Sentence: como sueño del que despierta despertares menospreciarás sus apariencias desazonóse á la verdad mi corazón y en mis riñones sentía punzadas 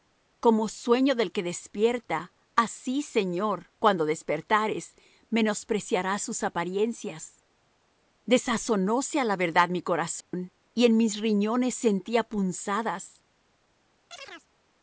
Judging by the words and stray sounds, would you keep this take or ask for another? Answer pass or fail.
fail